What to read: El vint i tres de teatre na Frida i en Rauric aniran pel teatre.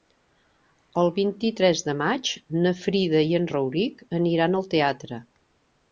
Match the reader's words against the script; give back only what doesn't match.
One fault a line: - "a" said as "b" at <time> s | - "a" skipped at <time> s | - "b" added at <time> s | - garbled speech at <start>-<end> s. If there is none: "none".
- "teatre" said as "maig" at 2.0 s
- "pel" said as "al" at 4.6 s